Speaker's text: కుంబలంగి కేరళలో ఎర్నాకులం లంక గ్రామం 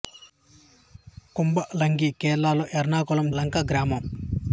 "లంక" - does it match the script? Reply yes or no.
yes